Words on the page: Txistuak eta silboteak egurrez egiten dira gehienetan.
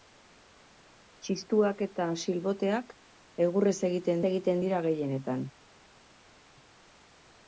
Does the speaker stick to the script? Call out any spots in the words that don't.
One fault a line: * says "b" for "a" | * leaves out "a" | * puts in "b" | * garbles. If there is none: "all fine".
* puts in "egiten"